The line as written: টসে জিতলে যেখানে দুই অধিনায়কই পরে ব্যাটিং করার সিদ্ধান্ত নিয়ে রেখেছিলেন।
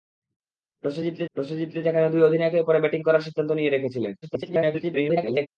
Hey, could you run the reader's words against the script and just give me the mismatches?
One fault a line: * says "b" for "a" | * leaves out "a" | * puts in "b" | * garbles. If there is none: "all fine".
* puts in "টসে জিতলে"
* garbles